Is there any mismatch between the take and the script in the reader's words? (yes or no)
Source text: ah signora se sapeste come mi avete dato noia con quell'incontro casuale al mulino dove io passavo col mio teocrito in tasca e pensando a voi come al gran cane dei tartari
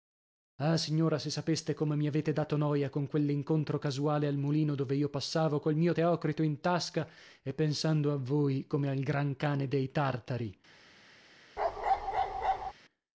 no